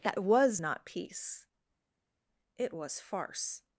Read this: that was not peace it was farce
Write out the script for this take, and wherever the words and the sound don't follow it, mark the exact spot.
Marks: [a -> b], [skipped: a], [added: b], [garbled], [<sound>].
that was not peace it was farce